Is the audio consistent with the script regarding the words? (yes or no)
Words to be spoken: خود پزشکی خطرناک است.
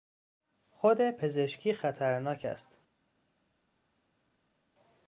yes